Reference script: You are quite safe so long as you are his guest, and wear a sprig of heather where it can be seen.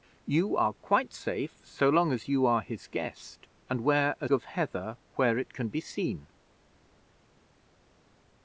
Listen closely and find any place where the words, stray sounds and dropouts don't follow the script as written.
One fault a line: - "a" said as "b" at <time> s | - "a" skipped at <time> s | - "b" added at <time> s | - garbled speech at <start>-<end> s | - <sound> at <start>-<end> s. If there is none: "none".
- "sprig" skipped at 4.3 s